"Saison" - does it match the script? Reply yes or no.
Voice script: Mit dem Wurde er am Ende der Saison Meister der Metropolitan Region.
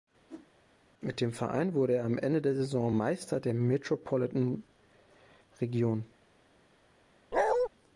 yes